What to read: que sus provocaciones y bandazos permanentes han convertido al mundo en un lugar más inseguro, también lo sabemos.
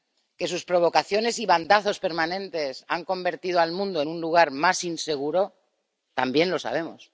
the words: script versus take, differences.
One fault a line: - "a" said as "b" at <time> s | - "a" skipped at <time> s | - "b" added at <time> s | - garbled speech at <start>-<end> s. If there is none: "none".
none